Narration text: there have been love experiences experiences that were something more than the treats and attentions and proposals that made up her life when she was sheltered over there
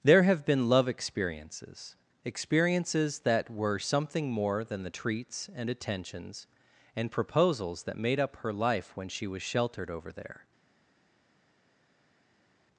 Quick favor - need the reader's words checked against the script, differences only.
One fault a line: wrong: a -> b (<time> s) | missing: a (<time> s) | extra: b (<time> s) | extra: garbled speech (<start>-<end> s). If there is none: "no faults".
no faults